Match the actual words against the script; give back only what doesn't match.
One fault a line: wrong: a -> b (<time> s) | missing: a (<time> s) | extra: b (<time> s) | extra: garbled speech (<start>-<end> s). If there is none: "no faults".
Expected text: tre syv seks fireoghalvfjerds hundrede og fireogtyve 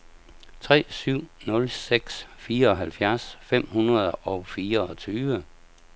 extra: nul (1.4 s)
extra: fem (3.4 s)